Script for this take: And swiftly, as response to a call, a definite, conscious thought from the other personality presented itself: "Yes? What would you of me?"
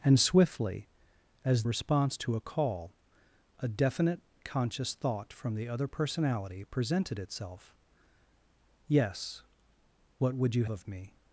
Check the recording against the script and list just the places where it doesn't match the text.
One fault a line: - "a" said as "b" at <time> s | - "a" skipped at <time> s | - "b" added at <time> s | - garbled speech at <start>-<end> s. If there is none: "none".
none